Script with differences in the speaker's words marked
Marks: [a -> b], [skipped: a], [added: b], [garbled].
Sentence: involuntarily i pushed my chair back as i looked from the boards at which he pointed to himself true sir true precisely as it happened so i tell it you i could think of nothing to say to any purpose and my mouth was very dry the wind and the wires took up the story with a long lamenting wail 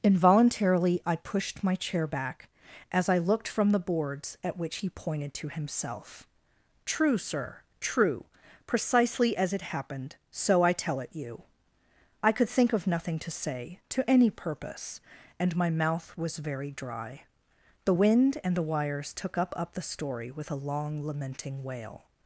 involuntarily i pushed my chair back as i looked from the boards at which he pointed to himself true sir true precisely as it happened so i tell it you i could think of nothing to say to any purpose and my mouth was very dry the wind and the wires took up [added: up] the story with a long lamenting wail